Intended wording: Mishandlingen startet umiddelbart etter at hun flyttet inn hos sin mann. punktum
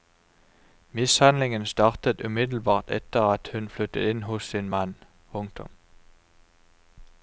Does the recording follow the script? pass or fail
pass